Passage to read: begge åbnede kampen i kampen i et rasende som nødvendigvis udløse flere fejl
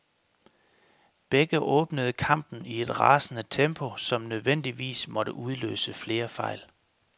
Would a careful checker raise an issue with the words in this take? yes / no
yes